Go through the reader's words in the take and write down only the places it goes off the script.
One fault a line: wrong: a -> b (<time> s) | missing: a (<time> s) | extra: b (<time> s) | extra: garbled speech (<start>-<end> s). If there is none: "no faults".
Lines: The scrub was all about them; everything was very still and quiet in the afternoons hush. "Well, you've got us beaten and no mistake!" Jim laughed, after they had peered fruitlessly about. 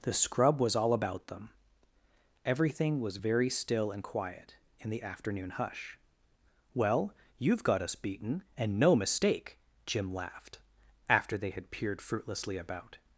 wrong: afternoons -> afternoon (5.0 s)